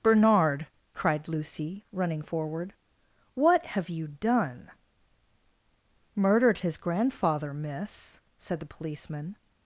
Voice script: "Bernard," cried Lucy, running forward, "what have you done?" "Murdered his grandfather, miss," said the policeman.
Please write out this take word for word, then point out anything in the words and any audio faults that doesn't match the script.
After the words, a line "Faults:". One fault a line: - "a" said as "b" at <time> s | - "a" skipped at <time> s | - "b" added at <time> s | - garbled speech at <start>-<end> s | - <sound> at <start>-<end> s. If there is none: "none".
"Bernard," cried Lucy, running forward, "what have you done?" "Murdered his grandfather, miss," said the policeman.
Faults:
none